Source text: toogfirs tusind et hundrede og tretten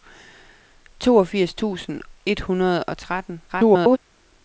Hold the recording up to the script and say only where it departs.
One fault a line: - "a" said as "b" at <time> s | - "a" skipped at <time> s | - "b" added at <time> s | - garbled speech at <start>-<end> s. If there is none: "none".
- garbled speech at 3.5-4.0 s